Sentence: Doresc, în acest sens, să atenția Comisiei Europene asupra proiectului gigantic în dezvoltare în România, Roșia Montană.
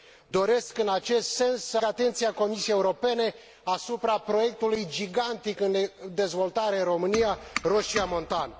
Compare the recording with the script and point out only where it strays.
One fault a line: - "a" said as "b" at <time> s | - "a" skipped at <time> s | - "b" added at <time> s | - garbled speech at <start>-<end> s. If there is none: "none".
none